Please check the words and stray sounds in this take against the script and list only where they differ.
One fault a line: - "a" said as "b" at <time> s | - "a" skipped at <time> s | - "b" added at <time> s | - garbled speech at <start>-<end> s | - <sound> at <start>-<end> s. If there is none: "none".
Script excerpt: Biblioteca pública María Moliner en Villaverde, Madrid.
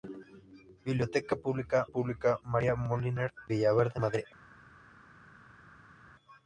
- "pública" added at 1.8 s
- "en" skipped at 3.3 s